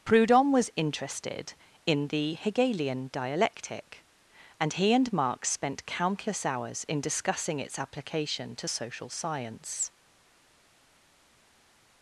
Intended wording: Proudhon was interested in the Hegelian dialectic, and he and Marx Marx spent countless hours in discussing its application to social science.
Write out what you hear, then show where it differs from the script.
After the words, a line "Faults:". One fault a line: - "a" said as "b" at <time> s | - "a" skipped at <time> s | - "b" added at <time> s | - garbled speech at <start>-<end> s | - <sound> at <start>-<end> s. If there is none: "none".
Proudhon was interested in the Hegelian dialectic, and he and Marx spent countless hours in discussing its application to social science.
Faults:
- "Marx" skipped at 5.5 s